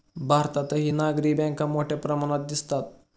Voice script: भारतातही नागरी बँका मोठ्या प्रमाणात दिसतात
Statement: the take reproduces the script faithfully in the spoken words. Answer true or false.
true